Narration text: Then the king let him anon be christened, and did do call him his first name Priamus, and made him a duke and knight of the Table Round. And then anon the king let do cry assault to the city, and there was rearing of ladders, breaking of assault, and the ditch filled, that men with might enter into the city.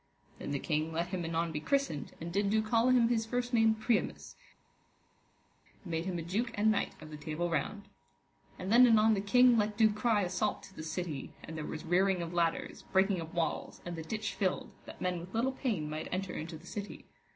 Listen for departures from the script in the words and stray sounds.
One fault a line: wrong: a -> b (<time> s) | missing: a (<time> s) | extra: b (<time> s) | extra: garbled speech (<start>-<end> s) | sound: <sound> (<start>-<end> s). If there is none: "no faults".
wrong: assault -> walls (13.3 s)
extra: little pain (15.4 s)